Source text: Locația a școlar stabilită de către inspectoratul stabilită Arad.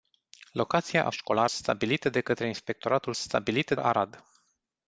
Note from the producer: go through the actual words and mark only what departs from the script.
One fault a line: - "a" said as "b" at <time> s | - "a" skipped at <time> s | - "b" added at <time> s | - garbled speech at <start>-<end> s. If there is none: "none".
none